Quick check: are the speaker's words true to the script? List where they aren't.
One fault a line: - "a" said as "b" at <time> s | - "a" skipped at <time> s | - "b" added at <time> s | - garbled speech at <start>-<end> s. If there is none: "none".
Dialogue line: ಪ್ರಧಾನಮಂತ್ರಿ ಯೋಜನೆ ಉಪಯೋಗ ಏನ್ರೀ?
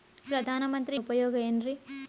- "ಯೋಜನೆ" skipped at 1.0 s